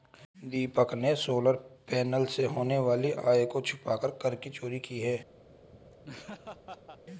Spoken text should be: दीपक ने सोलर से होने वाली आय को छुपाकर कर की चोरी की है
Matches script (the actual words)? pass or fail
fail